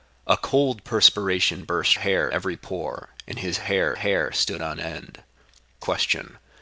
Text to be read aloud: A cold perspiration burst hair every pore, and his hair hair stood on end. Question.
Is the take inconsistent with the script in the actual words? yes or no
no